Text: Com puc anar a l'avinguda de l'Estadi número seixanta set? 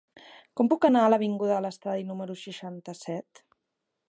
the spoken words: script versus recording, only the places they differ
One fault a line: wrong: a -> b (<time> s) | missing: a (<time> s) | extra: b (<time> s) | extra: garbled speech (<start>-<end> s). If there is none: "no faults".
no faults